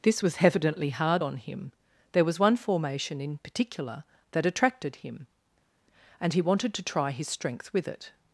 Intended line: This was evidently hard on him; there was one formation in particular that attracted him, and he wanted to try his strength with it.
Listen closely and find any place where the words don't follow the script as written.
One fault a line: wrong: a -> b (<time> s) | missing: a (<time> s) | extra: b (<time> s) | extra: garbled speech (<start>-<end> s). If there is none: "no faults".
no faults